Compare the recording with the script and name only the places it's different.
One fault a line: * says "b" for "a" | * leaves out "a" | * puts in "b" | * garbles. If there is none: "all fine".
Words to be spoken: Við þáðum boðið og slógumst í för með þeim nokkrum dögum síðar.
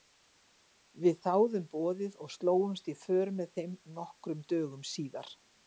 all fine